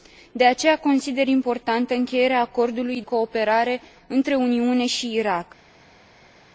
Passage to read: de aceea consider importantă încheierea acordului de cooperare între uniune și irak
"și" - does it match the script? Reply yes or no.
yes